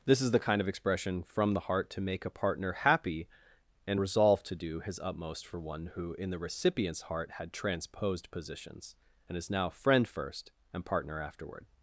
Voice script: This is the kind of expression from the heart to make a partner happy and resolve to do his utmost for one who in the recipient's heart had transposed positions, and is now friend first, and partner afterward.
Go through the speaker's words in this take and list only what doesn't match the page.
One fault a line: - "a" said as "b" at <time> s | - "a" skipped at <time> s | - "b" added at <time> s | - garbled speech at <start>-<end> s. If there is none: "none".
none